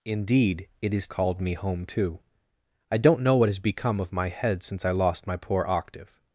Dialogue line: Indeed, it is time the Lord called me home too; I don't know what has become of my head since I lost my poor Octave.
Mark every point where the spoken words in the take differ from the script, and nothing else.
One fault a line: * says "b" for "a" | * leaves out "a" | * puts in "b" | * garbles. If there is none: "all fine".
* leaves out "time the Lord"